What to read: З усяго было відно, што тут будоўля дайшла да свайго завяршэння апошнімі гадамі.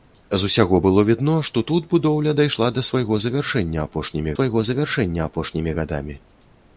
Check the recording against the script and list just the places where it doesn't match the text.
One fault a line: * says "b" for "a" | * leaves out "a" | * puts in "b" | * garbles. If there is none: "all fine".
* puts in "свайго завяршэння апошнімі"